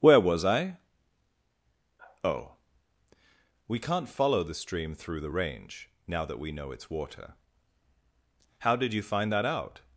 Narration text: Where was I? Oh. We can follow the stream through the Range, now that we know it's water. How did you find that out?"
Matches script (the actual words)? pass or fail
fail